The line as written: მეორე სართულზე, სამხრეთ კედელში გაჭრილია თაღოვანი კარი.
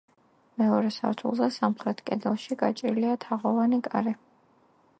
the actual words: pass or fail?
pass